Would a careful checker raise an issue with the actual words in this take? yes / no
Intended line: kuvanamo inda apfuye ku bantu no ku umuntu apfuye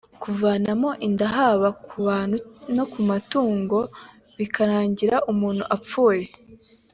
yes